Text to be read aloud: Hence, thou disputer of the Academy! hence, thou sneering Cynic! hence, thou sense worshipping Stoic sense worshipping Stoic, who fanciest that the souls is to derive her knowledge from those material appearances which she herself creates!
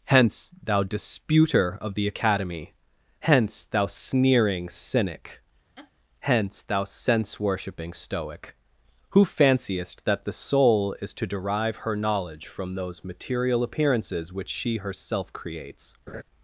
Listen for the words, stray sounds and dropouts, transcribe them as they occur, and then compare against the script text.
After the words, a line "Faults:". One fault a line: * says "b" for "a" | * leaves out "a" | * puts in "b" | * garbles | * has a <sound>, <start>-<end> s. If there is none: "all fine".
Hence, thou disputer of the Academy! hence, thou sneering Cynic! hence, thou sense worshipping Stoic, who fanciest that the soul is to derive her knowledge from those material appearances which she herself creates!
Faults:
* has a laugh, 5.8-5.9 s
* leaves out "sense worshipping Stoic"
* says "soul" for "souls"
* has a laugh, 16.1-16.2 s